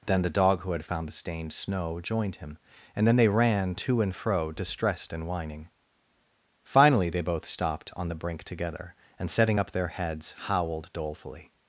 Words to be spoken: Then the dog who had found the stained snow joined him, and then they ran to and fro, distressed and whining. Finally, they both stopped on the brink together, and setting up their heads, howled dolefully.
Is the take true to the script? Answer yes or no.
yes